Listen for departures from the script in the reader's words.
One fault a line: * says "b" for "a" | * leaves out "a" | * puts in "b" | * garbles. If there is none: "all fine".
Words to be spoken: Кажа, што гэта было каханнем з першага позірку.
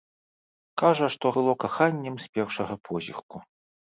* leaves out "гэта"